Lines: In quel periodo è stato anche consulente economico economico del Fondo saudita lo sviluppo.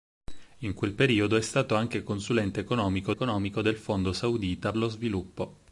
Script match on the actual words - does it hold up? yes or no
yes